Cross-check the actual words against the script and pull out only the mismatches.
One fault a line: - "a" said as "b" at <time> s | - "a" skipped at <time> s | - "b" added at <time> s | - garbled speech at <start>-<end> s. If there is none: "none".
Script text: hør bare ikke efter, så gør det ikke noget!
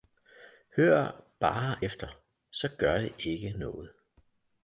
- "ikke" skipped at 1.8 s